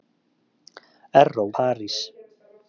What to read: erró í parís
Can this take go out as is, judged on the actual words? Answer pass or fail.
pass